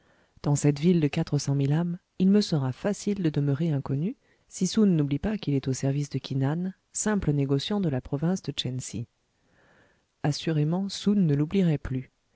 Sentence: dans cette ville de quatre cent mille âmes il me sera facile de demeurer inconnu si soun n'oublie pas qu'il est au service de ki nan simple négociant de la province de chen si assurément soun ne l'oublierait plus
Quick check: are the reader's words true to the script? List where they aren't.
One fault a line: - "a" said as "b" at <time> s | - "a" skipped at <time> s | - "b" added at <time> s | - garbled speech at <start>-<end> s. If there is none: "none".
none